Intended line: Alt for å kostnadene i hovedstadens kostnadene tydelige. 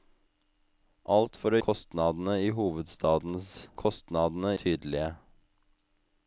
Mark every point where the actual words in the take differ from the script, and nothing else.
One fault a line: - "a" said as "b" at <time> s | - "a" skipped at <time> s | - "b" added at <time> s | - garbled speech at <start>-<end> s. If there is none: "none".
none